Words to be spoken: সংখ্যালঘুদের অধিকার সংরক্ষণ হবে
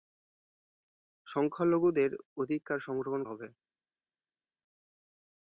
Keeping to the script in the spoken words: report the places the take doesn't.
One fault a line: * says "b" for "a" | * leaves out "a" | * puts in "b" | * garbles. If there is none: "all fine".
all fine